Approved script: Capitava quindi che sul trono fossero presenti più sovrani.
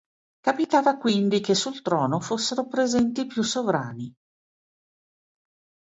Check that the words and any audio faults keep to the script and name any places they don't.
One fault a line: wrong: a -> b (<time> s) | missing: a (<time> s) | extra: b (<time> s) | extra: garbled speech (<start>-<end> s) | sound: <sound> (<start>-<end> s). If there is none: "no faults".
no faults